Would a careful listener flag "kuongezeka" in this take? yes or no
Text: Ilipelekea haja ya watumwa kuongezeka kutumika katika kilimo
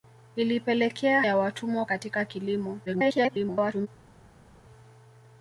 yes